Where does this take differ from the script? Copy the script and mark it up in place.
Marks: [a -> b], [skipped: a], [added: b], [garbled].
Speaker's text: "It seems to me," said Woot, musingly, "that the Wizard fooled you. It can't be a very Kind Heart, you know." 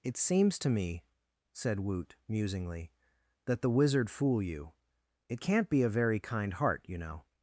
"It seems to me," said Woot, musingly, "that the Wizard [fooled -> fool] you. It can't be a very Kind Heart, you know."